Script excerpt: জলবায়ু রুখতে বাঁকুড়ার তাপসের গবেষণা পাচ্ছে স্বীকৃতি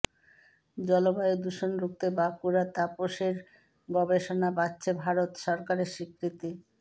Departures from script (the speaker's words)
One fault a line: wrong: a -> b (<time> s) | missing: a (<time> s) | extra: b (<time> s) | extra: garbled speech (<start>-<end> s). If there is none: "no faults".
extra: দূষণ (1.4 s)
extra: ভারত সরকারের (5.0 s)